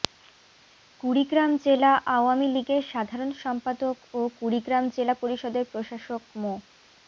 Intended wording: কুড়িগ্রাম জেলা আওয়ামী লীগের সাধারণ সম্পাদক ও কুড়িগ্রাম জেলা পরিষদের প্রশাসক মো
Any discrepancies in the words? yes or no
no